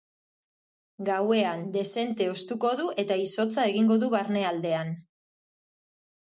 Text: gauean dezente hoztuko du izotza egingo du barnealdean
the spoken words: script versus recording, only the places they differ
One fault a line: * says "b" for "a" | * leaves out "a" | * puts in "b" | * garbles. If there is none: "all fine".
* puts in "eta"